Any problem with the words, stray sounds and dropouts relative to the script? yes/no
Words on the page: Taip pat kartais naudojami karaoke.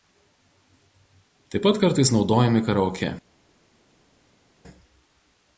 no